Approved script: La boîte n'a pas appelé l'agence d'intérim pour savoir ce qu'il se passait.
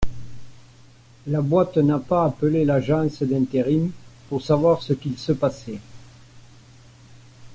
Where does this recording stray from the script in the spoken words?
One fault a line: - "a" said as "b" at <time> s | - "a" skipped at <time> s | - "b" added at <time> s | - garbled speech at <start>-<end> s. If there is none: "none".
none